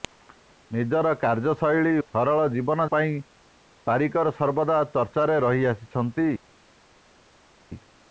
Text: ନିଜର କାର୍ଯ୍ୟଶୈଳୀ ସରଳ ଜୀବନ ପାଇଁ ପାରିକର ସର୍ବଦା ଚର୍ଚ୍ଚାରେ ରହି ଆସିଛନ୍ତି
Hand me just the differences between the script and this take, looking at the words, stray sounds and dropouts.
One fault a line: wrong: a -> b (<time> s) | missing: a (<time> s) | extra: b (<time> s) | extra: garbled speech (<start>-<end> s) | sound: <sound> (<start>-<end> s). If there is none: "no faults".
no faults